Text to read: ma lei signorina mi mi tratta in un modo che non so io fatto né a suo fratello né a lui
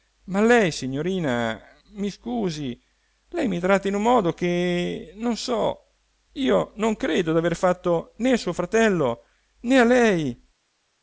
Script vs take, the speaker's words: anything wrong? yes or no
yes